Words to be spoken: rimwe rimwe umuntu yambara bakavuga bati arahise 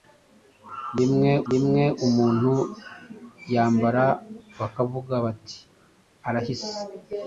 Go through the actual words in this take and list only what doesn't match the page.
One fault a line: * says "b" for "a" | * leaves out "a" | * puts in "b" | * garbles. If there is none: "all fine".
all fine